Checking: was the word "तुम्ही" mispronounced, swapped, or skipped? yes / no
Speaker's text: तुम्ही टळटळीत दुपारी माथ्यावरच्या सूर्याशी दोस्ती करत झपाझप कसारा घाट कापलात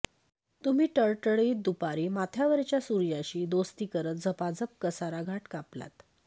no